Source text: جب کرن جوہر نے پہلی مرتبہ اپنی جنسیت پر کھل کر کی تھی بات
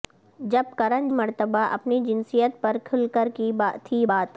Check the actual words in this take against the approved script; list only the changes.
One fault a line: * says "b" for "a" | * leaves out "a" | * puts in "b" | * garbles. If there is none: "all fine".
* leaves out "جوہر نے پہلی"